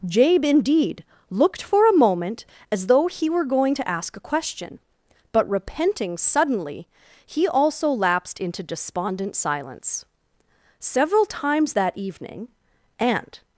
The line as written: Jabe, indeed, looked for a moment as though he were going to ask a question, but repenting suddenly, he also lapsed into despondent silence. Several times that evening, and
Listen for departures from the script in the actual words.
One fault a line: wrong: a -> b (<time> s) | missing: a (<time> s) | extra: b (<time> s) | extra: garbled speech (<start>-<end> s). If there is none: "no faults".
no faults